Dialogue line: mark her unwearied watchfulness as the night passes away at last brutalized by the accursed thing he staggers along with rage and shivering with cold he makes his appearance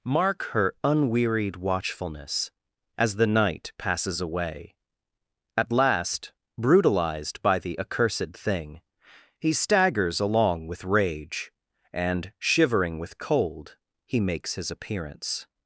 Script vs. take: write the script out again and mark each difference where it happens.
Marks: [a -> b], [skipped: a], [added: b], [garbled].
mark her unwearied watchfulness as the night passes away at last brutalized by the accursed thing he staggers along with rage and shivering with cold he makes his appearance